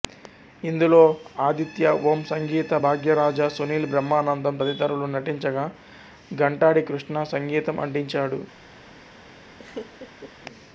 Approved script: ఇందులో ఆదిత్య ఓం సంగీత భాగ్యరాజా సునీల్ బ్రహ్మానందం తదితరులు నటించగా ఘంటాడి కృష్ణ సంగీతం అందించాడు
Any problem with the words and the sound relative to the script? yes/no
yes